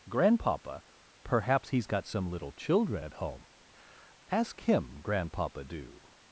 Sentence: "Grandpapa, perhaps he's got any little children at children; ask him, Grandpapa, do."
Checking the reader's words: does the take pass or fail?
fail